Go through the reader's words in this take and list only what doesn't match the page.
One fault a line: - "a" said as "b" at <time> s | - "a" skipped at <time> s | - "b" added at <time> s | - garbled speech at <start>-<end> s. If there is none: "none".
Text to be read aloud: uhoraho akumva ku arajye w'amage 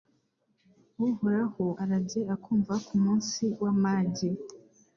- "arajye" added at 1.8 s
- "arajye" said as "munsi" at 3.0 s